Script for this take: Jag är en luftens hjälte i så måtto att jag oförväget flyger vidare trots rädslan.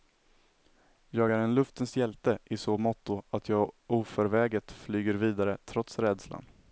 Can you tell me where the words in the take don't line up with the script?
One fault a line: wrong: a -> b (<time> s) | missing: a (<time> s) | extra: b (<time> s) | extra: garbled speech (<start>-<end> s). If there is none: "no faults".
no faults